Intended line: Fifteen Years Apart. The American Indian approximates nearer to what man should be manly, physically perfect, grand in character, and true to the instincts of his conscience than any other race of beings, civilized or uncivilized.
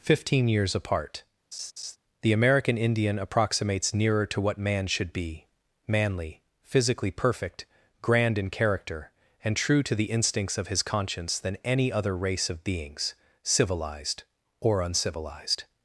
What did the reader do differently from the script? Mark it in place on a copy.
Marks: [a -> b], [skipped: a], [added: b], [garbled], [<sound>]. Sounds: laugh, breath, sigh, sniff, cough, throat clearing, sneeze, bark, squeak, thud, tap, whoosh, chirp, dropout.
Fifteen Years Apart. [laugh] The American Indian approximates nearer to what man should be manly, physically perfect, grand in character, and true to the instincts of his conscience than any other race of beings, civilized or uncivilized.